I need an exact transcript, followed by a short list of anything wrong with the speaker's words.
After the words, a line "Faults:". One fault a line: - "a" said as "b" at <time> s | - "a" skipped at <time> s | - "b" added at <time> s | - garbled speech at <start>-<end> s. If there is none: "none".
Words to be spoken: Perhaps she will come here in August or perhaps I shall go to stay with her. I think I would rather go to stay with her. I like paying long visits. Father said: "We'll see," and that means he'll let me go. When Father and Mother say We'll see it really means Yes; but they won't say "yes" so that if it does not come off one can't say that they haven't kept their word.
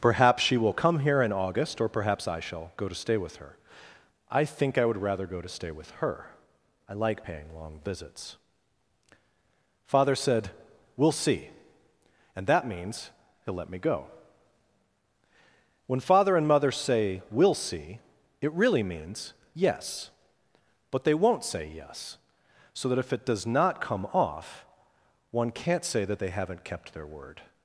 Perhaps she will come here in August or perhaps I shall go to stay with her. I think I would rather go to stay with her. I like paying long visits. Father said: "We'll see," and that means he'll let me go. When Father and Mother say We'll see it really means Yes; but they won't say "yes" so that if it does not come off one can't say that they haven't kept their word.
Faults:
none